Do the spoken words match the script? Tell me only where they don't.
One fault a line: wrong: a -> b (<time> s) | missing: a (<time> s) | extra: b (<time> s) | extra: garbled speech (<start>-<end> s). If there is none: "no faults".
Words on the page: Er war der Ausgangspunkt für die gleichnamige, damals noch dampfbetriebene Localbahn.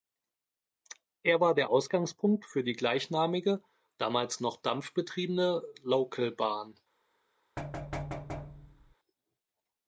no faults